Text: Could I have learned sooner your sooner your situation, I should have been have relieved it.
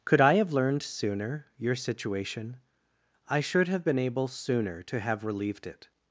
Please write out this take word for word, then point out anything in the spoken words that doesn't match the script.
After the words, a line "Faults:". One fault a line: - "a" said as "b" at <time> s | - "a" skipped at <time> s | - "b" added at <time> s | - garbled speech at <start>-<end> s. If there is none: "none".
Could I have learned sooner your situation, I should have been able sooner to have relieved it.
Faults:
- "sooner your" skipped at 1.8 s
- "able sooner to" added at 4.0 s